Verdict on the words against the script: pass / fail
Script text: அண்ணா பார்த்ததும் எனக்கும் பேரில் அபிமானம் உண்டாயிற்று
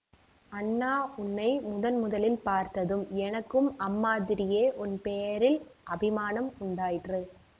fail